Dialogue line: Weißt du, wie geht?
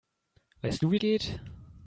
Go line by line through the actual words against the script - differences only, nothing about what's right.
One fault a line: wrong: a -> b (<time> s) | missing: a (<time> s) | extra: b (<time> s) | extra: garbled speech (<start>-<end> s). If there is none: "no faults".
no faults